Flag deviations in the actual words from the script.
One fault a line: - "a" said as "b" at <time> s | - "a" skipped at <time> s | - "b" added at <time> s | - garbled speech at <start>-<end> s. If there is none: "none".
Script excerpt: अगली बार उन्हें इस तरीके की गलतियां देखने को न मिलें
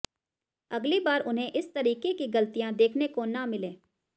none